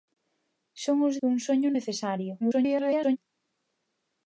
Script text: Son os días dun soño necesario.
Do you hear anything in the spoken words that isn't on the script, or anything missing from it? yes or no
yes